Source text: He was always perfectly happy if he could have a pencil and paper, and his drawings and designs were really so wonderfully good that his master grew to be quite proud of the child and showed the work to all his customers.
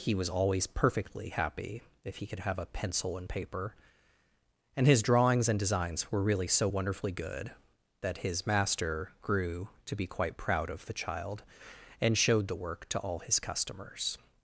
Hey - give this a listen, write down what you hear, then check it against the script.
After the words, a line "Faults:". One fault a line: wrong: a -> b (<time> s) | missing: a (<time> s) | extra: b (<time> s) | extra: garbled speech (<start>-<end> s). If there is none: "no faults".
He was always perfectly happy if he could have a pencil and paper, and his drawings and designs were really so wonderfully good that his master grew to be quite proud of the child and showed the work to all his customers.
Faults:
no faults